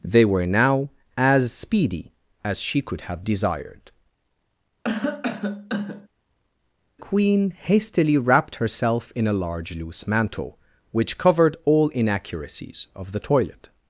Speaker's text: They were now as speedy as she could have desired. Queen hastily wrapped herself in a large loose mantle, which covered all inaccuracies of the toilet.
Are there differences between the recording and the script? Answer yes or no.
no